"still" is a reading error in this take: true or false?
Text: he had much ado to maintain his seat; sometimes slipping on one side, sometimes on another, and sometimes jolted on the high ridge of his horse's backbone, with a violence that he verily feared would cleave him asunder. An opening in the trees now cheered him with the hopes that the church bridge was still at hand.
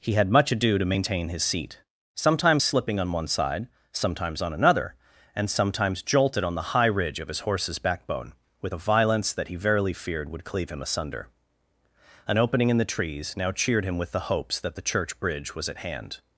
true